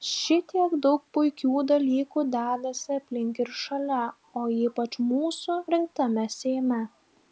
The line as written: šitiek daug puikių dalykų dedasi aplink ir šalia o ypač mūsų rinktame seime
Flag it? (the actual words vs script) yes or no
no